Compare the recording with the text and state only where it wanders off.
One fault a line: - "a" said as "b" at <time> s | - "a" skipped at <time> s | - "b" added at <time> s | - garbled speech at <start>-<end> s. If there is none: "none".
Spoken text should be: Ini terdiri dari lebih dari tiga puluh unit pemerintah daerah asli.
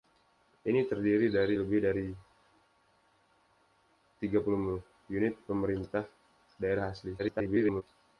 - garbled speech at 7.2-7.8 s